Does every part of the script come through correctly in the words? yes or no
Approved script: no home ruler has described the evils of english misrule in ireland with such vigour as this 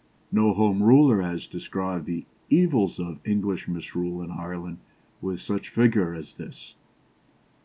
yes